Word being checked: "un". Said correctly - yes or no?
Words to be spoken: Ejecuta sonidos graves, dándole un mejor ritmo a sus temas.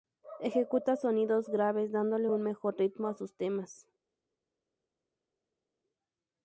yes